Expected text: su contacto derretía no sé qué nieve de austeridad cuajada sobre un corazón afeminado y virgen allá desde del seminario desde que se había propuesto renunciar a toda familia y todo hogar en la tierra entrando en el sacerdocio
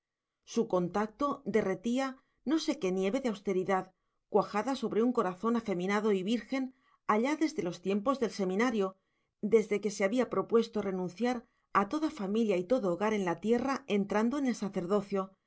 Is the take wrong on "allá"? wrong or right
right